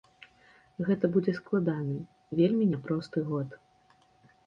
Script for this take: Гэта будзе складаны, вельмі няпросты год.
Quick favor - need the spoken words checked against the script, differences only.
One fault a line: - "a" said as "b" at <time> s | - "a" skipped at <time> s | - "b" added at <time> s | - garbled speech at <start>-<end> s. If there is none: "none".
none